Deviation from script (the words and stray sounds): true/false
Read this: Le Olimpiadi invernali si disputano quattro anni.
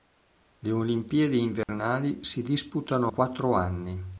true